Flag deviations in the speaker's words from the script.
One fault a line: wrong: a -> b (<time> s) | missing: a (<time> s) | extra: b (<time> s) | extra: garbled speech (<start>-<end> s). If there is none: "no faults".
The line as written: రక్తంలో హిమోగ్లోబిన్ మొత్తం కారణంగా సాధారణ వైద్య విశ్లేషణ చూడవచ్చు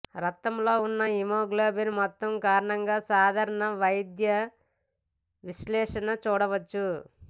extra: ఉన్న (0.8 s)